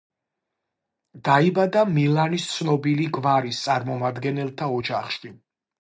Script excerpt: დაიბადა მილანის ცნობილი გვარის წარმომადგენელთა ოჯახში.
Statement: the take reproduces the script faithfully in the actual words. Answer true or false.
true